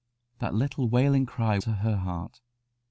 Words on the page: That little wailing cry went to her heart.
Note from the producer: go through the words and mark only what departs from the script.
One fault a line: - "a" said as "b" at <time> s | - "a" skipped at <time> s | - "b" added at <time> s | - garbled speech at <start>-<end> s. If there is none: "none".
- "went" skipped at 1.6 s